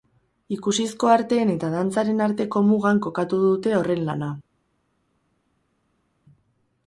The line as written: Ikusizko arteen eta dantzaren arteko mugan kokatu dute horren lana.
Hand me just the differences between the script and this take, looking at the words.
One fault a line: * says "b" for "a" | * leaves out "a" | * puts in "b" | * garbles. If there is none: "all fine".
all fine